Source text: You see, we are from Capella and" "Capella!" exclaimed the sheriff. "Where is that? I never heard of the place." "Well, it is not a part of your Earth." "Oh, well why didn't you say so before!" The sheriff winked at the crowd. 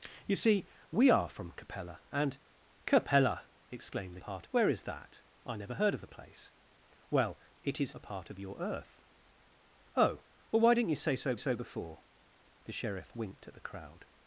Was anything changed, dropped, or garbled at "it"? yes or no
no